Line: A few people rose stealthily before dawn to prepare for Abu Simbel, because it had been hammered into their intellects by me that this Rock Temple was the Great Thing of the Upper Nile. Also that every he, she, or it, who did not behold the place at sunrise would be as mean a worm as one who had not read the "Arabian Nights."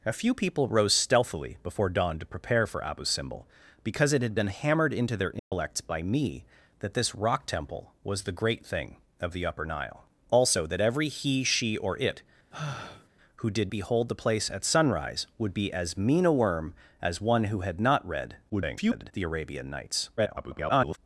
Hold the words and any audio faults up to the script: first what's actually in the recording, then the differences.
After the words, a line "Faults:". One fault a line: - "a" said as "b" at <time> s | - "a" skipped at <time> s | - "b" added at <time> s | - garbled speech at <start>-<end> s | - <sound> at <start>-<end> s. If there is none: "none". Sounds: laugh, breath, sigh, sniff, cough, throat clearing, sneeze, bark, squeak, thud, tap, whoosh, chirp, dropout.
A few people rose stealthily before dawn to prepare for Abu Simbel, because it had been hammered into their intellects by me that this Rock Temple was the Great Thing of the Upper Nile. Also that every he, she, or it, who did behold the place at sunrise would be as mean a worm as one who had not read [garbled] the "Arabian Nights." [garbled]
Faults:
- dropout at 5.4-5.5 s
- sigh at 12.5-13.1 s
- "not" skipped at 13.7 s
- garbled speech at 18.5-19.1 s
- garbled speech at 20.2-21.0 s